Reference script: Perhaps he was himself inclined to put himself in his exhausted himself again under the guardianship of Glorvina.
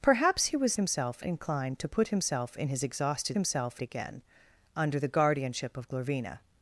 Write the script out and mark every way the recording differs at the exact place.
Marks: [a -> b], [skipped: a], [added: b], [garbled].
Perhaps he was himself inclined to put himself in his exhausted himself again under the guardianship of Glorvina.